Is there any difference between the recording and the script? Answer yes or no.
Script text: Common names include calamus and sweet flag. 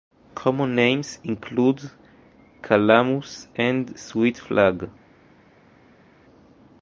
no